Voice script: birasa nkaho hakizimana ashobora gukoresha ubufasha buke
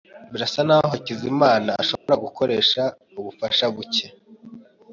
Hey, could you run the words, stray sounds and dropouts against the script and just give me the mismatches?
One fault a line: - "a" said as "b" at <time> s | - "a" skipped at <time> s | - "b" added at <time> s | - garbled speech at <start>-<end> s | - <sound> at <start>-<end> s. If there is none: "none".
- dropout at 2.0-2.1 s